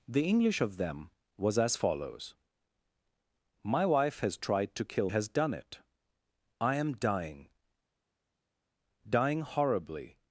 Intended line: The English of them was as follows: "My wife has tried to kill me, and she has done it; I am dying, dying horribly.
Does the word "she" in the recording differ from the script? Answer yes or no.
yes